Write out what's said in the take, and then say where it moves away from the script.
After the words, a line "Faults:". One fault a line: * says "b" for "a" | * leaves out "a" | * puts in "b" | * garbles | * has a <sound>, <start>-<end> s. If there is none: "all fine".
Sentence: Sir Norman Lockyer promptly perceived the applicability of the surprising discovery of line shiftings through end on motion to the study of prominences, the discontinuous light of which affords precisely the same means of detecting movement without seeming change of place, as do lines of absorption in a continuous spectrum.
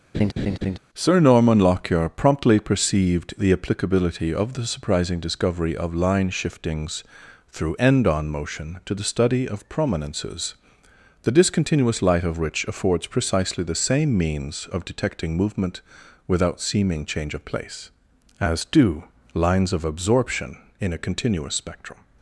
Sir Norman Lockyer promptly perceived the applicability of the surprising discovery of line shiftings through end on motion to the study of prominences, the discontinuous light of which affords precisely the same means of detecting movement without seeming change of place, as do lines of absorption in a continuous spectrum.
Faults:
* has a laugh, 0.1-0.8 s